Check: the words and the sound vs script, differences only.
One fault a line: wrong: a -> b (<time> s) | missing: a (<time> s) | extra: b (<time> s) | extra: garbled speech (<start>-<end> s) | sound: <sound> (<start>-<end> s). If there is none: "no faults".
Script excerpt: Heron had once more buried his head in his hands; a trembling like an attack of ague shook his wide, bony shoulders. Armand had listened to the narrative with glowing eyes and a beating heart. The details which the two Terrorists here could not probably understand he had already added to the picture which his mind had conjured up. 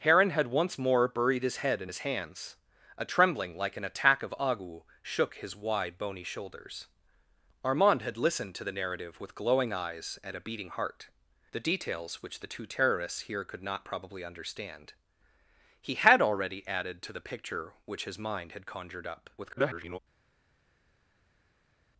extra: garbled speech (19.4-20.0 s)